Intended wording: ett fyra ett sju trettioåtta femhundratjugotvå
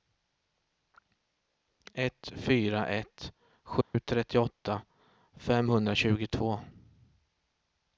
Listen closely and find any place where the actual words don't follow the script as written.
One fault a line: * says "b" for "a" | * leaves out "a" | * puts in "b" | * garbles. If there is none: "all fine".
all fine